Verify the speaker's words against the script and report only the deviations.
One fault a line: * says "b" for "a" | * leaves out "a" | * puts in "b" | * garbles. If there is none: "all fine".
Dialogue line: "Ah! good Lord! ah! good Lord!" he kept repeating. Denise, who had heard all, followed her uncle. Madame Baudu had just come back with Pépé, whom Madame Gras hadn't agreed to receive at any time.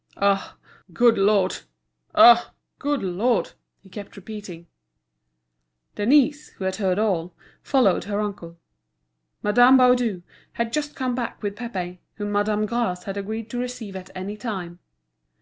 * says "had" for "hadn't"